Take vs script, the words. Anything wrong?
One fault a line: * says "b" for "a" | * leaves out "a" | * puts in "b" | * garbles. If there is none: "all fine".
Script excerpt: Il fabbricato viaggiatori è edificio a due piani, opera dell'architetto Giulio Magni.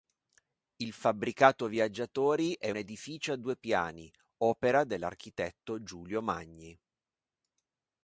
all fine